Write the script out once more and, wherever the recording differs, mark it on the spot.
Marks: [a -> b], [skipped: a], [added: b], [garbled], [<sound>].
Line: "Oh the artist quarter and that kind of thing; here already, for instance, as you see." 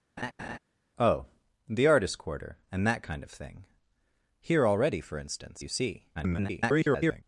[laugh] "Oh the artist quarter and that kind of thing; here already, for instance, [skipped: as] you see." [garbled]